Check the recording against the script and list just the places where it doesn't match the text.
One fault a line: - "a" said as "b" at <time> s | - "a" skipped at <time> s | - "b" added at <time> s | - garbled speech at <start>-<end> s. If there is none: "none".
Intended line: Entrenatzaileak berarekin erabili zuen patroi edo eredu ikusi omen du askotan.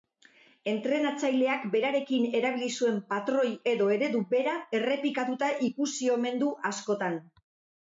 - "bera errepikatuta" added at 4.3 s